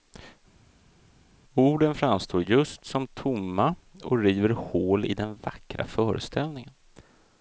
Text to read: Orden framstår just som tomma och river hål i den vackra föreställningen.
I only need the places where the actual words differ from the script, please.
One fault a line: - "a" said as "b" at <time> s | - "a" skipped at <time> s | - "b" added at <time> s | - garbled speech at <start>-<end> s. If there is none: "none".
none